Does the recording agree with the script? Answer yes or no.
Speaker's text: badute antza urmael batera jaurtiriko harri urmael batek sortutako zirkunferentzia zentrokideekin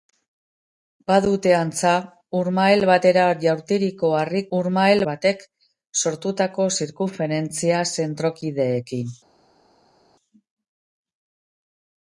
yes